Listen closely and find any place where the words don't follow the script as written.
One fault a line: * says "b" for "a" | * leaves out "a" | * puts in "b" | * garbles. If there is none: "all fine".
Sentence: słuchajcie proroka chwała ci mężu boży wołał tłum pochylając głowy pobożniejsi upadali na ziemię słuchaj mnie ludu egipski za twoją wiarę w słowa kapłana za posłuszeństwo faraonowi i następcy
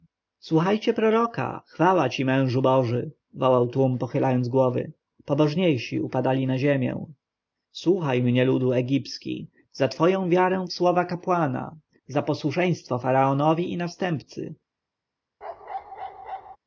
all fine